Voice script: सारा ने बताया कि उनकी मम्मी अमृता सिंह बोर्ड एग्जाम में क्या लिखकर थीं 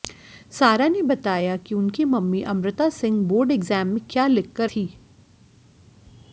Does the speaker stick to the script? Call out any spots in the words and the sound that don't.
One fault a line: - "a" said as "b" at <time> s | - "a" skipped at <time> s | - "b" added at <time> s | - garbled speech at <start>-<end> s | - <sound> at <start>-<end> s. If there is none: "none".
none